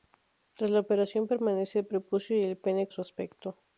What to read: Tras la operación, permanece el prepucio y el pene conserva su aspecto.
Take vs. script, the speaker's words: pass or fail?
fail